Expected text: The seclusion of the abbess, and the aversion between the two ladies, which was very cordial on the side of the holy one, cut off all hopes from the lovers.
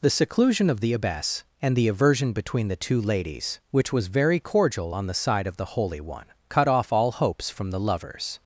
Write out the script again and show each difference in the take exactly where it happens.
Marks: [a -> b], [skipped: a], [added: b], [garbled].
The seclusion of the abbess, and the aversion between the two ladies, which was very cordial on the side of the holy one, cut off all hopes from the lovers.